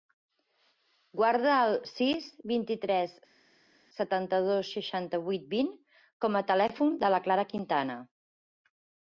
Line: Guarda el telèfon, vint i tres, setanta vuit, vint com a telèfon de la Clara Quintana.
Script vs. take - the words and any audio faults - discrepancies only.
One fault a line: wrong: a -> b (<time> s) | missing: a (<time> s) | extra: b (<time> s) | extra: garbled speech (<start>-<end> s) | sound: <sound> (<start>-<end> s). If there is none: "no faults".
wrong: telèfon -> sis (1.9 s)
extra: dos seixanta (4.5 s)